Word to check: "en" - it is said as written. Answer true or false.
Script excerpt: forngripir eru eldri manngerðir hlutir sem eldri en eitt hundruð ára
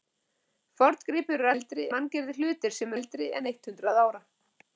true